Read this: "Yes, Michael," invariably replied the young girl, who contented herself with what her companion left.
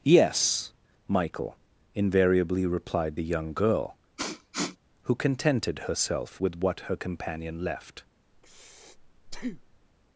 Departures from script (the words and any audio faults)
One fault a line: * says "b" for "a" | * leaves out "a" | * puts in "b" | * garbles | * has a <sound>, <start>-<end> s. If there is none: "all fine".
* has a sniff, 4.2-4.8 s
* has a breath, 8.3-9.9 s